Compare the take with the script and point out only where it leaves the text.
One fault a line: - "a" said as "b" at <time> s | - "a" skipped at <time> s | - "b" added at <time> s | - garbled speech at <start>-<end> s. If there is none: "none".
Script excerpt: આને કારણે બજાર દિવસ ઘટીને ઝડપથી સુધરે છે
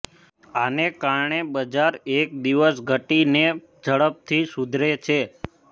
- "એક" added at 2.1 s